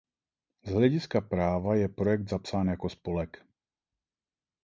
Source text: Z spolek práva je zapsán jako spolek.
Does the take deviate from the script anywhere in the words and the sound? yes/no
yes